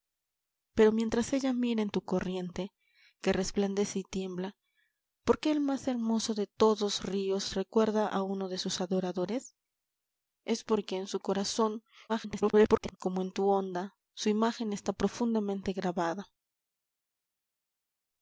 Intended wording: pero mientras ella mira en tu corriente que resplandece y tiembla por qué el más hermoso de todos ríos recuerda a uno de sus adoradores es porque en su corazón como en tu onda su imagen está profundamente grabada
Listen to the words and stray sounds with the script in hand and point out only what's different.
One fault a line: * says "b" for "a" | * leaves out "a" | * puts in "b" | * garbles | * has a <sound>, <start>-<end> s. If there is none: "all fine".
* garbles